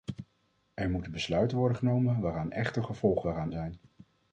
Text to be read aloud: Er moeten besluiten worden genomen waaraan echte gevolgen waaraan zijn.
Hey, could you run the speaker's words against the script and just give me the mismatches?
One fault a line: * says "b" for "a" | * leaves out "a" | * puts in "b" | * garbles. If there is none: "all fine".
all fine